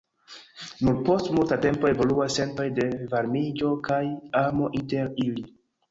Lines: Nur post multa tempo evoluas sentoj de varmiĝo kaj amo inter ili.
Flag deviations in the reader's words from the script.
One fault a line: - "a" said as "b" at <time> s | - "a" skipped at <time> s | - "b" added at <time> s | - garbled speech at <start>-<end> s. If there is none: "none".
none